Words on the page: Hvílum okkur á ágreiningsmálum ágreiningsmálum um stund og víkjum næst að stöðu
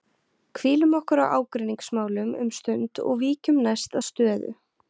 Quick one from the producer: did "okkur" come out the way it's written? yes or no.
yes